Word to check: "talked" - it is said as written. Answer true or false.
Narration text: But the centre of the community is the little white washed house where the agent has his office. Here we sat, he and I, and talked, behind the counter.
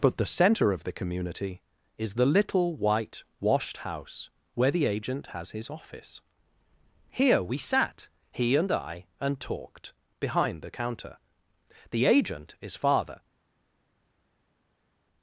true